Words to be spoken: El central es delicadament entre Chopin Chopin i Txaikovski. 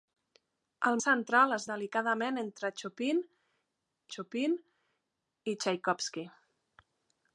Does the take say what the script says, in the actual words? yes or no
yes